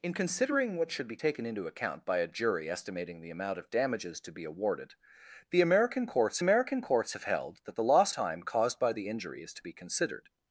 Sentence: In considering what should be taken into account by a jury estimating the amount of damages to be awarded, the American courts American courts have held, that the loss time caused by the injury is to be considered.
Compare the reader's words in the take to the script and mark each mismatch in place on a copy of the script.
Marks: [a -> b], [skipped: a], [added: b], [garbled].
In considering what should be taken into account by a jury estimating the amount of damages to be awarded, the American courts American courts have held, that the loss time caused by the injury is to be considered.